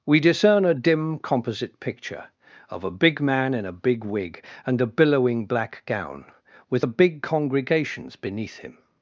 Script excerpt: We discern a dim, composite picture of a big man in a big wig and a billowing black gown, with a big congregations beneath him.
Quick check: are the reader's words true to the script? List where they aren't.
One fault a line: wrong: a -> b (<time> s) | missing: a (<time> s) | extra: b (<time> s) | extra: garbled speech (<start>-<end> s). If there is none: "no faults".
no faults